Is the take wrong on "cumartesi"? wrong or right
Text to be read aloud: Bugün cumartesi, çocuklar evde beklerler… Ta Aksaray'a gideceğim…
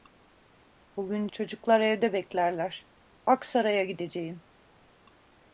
wrong